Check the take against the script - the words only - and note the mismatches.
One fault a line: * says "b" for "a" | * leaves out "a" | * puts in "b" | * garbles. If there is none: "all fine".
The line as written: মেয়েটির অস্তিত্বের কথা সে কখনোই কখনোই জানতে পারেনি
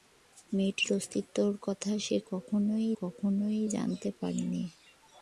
all fine